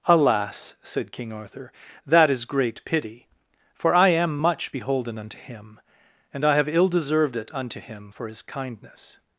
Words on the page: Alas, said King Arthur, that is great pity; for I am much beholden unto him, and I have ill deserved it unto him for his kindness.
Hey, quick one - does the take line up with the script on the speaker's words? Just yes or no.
yes